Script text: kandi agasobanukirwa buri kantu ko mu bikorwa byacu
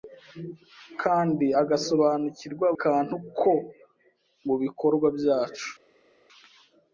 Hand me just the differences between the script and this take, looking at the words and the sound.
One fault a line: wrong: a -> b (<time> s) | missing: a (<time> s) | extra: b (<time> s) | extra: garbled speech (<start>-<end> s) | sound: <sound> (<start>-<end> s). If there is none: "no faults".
missing: buri (2.7 s)